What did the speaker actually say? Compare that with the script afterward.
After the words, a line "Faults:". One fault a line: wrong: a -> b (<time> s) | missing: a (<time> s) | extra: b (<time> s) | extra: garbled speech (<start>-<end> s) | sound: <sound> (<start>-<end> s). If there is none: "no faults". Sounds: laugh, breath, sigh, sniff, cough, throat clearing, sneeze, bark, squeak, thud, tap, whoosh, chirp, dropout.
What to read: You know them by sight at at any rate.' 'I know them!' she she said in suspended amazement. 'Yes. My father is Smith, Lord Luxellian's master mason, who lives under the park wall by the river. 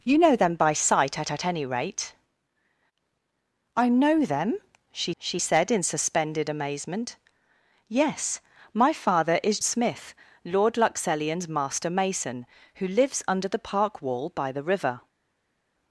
You know them by sight at at any rate.' 'I know them!' she she said in suspended amazement. 'Yes. My father is Smith, Lord Luxellian's master mason, who lives under the park wall by the river.
Faults:
no faults